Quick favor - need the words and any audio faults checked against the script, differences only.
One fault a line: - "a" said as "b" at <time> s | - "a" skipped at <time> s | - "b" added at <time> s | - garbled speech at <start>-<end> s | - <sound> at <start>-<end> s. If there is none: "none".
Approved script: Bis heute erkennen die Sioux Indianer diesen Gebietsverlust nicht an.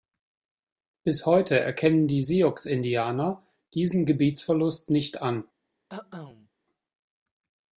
- cough at 5.9-6.5 s